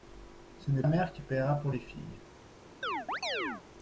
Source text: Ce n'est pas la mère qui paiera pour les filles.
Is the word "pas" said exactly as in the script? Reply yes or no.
no